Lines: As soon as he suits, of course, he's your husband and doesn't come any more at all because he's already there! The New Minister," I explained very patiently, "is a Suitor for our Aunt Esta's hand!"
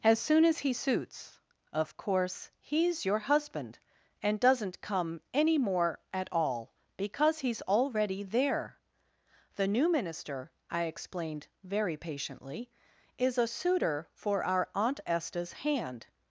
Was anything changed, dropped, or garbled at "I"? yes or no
no